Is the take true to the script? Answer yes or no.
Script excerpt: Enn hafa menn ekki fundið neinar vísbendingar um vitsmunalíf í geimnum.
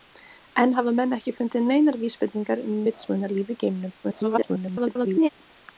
no